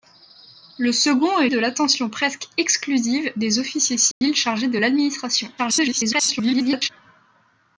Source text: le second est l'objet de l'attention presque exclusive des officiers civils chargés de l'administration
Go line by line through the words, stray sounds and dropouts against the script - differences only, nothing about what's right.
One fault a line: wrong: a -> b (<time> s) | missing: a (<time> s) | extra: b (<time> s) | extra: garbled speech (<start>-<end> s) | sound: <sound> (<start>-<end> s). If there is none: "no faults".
missing: l'objet (1.5 s)
sound: dropout (4.1-4.2 s)
extra: garbled speech (5.6-6.9 s)